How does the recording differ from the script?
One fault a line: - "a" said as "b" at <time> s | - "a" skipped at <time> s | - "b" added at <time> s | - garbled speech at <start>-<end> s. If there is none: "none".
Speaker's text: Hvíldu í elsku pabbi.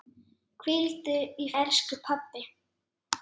none